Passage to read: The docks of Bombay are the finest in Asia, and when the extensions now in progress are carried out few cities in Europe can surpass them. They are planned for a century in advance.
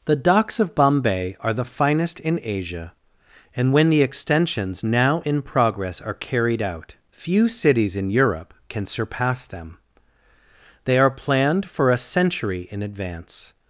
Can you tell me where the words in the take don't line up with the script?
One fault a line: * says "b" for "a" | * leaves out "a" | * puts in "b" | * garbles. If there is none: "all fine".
all fine